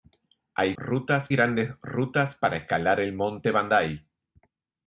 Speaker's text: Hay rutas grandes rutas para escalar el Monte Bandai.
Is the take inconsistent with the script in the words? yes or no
no